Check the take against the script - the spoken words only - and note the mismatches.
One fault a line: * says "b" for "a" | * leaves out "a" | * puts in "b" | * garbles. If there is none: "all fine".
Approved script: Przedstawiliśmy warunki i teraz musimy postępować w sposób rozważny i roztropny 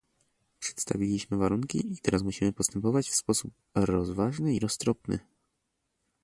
all fine